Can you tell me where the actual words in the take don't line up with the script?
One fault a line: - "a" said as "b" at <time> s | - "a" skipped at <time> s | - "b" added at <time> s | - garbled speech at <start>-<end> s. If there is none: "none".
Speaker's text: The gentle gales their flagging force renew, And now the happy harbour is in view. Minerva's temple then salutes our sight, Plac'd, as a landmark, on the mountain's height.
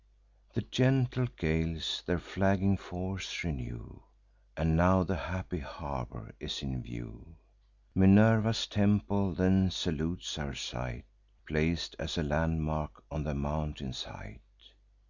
none